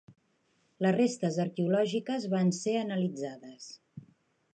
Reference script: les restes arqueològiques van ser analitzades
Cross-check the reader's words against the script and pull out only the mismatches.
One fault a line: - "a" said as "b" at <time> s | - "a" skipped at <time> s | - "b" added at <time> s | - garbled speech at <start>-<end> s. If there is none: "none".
none